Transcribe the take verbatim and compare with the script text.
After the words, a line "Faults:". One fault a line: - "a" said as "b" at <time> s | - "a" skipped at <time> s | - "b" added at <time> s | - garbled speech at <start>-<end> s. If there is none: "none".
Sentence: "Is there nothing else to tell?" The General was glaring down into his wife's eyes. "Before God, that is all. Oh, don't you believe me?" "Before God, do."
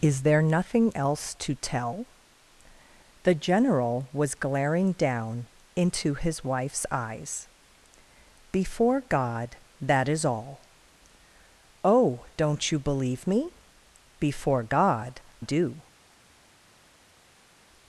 "Is there nothing else to tell?" The General was glaring down into his wife's eyes. "Before God, that is all. Oh, don't you believe me?" "Before God, do."
Faults:
none